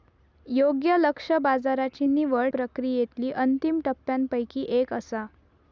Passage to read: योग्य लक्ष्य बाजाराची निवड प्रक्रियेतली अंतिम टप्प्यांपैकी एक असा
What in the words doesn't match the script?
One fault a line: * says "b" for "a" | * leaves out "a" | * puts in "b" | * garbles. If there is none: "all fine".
all fine